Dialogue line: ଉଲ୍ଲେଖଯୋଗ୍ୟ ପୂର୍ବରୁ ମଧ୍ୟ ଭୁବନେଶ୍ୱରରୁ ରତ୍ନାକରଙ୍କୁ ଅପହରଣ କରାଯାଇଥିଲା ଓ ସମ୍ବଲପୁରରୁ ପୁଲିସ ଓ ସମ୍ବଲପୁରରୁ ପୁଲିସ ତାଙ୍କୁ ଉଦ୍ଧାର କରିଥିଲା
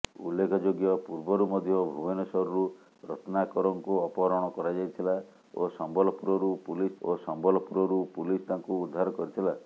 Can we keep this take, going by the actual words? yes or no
yes